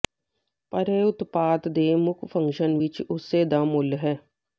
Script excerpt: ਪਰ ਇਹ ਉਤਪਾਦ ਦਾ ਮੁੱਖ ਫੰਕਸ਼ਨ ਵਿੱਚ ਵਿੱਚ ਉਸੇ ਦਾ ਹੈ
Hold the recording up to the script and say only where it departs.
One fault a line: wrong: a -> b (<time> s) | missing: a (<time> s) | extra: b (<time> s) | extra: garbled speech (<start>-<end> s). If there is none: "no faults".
wrong: ਦਾ -> ਦੇ (1.7 s)
missing: ਵਿੱਚ (3.0 s)
extra: ਮੁੱਲ (3.7 s)